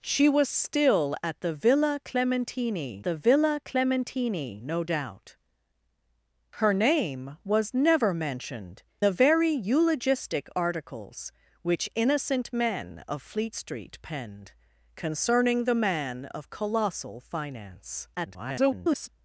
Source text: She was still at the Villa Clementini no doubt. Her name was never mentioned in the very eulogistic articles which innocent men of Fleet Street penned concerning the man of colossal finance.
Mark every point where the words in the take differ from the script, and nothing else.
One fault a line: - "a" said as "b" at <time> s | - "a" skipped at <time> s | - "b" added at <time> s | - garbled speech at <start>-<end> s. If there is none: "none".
- "the Villa Clementini" added at 3.0 s
- "in" skipped at 8.8 s
- garbled speech at 18.1-19.1 s